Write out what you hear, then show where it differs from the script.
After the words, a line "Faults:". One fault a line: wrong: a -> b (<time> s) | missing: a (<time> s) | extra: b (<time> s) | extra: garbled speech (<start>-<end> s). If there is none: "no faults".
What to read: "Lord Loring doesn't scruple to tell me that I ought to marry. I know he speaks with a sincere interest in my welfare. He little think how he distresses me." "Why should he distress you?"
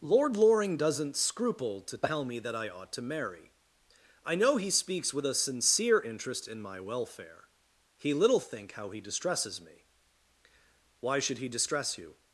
"Lord Loring doesn't scruple to tell me that I ought to marry. I know he speaks with a sincere interest in my welfare. He little think how he distresses me." "Why should he distress you?"
Faults:
no faults